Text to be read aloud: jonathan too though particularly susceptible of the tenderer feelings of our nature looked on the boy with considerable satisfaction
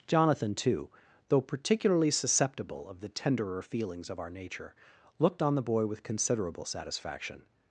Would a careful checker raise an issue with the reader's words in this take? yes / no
no